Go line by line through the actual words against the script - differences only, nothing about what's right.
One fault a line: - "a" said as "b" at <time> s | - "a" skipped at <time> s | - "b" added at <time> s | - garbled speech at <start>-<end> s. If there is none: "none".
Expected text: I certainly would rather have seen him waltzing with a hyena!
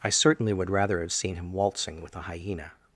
none